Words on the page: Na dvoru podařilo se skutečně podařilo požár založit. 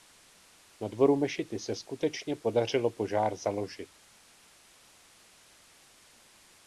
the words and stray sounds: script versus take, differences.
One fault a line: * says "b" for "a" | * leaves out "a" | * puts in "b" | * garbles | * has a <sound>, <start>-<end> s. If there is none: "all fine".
* says "mešity" for "podařilo"